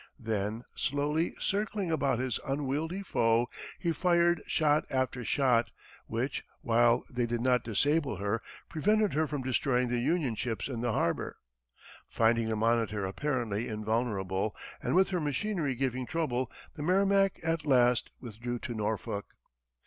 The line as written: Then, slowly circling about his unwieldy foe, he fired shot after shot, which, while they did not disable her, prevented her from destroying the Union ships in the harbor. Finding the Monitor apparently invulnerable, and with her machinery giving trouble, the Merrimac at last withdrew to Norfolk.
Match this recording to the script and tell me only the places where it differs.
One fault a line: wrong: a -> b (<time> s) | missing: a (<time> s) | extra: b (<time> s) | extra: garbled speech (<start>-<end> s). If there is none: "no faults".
no faults